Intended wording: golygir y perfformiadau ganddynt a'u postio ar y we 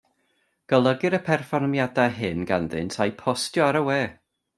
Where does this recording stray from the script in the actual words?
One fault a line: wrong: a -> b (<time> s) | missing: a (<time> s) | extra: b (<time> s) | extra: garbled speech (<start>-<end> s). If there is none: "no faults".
extra: hyn (2.2 s)